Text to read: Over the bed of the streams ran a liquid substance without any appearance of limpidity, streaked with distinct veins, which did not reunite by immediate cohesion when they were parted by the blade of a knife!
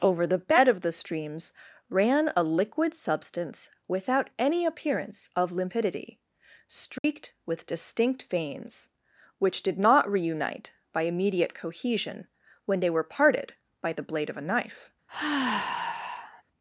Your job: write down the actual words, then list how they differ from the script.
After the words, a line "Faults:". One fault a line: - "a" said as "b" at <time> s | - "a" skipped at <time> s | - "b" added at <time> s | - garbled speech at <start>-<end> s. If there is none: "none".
Over the bed of the streams ran a liquid substance without any appearance of limpidity, streaked with distinct veins, which did not reunite by immediate cohesion when they were parted by the blade of a knife!
Faults:
none